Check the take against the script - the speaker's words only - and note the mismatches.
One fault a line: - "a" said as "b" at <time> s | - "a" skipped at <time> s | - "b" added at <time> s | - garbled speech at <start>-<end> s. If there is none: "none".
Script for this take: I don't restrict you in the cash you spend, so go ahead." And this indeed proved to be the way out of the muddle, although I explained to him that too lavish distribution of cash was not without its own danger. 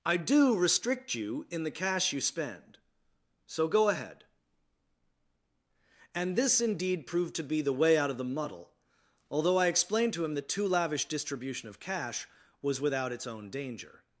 - "don't" said as "do" at 0.2 s
- "not" skipped at 12.8 s